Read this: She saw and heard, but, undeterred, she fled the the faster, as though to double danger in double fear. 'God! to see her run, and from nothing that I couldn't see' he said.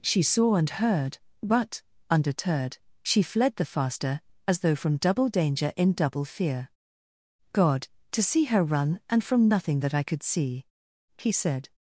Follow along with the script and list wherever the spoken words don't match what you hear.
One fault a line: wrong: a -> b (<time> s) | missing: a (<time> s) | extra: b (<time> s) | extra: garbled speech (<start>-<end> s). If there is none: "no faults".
missing: the (3.6 s)
wrong: to -> from (4.8 s)
wrong: couldn't -> could (10.0 s)